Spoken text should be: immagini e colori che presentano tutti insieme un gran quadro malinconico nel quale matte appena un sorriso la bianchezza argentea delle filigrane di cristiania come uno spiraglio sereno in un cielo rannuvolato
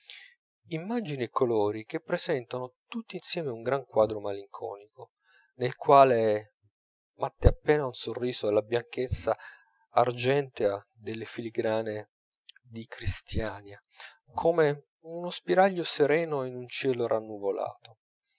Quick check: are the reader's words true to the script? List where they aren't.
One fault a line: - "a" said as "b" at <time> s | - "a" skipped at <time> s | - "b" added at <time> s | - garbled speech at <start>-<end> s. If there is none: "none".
none